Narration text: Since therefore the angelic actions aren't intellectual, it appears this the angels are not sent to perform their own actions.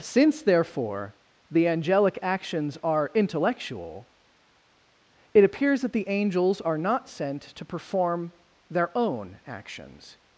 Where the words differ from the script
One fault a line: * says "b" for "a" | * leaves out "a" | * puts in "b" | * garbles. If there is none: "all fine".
* says "are" for "aren't"
* says "that" for "this"